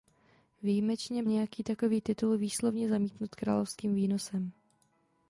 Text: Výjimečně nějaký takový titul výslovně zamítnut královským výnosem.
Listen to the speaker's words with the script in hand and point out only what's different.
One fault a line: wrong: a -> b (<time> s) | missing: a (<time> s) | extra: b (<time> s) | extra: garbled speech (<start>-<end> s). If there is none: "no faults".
no faults